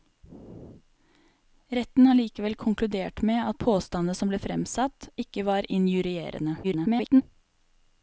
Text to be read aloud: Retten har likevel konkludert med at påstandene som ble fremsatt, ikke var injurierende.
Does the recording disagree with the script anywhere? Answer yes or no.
yes